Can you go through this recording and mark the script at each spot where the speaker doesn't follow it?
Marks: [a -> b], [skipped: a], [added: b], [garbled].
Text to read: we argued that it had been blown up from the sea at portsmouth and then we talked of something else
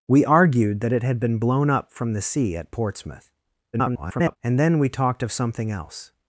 we argued that it had been blown up from the sea at portsmouth [garbled] and then we talked of something else